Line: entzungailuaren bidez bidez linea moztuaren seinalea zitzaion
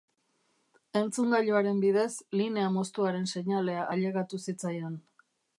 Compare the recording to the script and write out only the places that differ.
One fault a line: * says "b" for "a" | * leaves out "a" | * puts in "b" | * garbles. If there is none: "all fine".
* leaves out "bidez"
* puts in "ailegatu"